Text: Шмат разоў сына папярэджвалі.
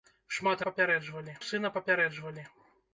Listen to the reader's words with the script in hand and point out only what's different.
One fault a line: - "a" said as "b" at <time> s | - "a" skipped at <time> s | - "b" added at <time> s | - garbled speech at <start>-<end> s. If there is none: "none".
- "разоў" said as "папярэджвалі" at 0.7 s